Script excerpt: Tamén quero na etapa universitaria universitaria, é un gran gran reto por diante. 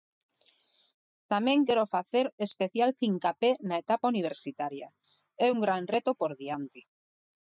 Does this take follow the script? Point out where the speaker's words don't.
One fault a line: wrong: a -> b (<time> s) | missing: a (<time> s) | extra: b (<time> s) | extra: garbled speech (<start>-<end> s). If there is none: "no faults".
extra: facer especial fincapé (1.9 s)
missing: universitaria (4.9 s)
missing: gran (5.8 s)